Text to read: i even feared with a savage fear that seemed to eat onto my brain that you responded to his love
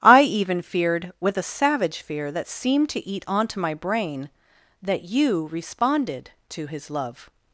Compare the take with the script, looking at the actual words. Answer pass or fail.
pass